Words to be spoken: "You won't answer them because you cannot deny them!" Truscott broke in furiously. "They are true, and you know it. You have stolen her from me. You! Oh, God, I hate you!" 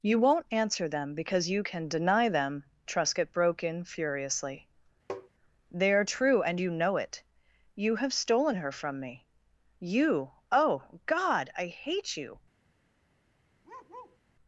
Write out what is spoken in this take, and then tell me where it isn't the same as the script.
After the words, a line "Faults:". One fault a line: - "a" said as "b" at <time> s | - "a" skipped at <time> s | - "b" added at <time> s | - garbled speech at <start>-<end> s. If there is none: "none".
"You won't answer them because you can deny them!" Truscott broke in furiously. "They are true, and you know it. You have stolen her from me. You! Oh, God, I hate you!"
Faults:
- "cannot" said as "can" at 1.6 s